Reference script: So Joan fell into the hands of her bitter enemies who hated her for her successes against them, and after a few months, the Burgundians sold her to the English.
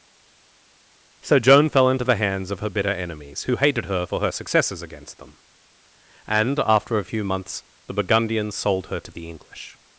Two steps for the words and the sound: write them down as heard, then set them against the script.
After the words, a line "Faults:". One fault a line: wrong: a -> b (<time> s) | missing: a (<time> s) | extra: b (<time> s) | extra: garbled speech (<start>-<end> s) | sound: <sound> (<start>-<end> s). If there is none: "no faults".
So Joan fell into the hands of her bitter enemies who hated her for her successes against them, and after a few months, the Burgundians sold her to the English.
Faults:
no faults